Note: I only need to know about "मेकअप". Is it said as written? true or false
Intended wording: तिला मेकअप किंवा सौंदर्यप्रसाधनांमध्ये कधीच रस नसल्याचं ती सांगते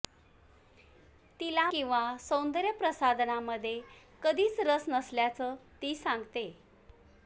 false